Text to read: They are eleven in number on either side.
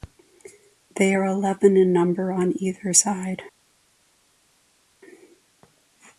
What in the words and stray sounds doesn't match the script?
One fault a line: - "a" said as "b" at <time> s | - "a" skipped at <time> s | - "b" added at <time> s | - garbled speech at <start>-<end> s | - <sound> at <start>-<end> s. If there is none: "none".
none